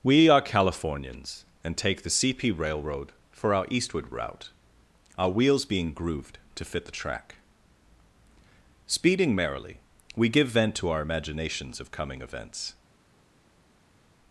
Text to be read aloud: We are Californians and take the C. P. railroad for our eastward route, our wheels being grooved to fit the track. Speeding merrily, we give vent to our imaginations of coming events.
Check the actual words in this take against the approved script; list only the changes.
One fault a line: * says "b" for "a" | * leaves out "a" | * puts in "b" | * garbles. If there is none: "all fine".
all fine